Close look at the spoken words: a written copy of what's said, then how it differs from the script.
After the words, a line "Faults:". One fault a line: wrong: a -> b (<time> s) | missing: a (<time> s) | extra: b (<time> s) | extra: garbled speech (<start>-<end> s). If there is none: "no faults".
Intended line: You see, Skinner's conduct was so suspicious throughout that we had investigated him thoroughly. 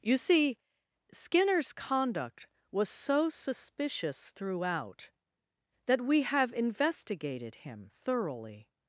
You see, Skinner's conduct was so suspicious throughout that we have investigated him thoroughly.
Faults:
wrong: had -> have (6.2 s)